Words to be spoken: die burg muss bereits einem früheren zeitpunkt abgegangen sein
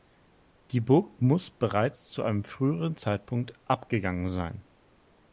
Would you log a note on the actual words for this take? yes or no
yes